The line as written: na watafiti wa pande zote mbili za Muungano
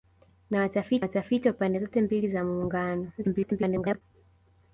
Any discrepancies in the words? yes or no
yes